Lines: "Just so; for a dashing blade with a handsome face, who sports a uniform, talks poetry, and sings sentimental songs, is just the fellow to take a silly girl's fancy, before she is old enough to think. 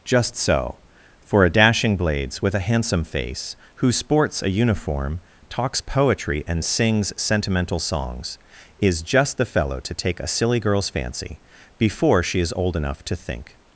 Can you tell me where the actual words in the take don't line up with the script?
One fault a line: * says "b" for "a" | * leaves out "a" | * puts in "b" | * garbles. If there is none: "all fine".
* says "blades" for "blade"